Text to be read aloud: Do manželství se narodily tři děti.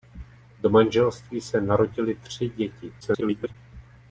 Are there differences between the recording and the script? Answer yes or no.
yes